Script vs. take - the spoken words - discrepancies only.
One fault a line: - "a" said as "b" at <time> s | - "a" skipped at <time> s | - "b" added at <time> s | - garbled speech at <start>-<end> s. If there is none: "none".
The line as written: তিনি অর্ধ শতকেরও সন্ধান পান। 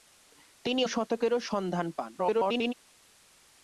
- "অর্ধ" skipped at 0.8 s
- garbled speech at 2.2-2.7 s